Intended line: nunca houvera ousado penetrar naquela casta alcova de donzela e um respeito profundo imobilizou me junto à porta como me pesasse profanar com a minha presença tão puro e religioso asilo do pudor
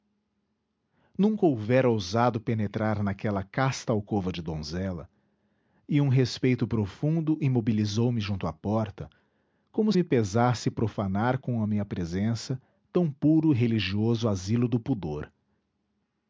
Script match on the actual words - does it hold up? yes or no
yes